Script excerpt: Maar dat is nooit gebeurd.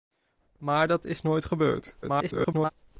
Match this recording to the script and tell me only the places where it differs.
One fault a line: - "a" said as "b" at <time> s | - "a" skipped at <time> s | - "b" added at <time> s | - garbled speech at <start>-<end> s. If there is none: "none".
- garbled speech at 2.0-2.7 s